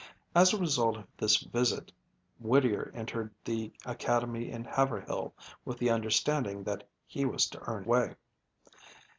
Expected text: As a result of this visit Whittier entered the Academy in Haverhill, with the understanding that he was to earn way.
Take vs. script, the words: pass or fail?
pass